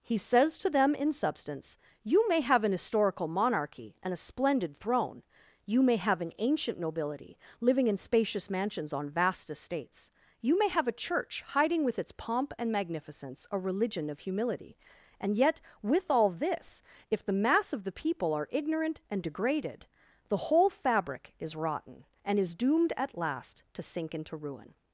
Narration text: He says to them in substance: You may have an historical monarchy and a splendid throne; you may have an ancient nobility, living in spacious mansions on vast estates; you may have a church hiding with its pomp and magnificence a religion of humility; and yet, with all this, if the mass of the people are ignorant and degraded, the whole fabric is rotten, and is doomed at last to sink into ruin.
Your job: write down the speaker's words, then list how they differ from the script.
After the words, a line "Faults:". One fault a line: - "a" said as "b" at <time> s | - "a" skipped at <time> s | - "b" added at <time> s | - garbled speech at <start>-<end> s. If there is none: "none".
He says to them in substance: You may have an historical monarchy and a splendid throne; you may have an ancient nobility, living in spacious mansions on vast estates; you may have a church hiding with its pomp and magnificence a religion of humility; and yet, with all this, if the mass of the people are ignorant and degraded, the whole fabric is rotten, and is doomed at last to sink into ruin.
Faults:
none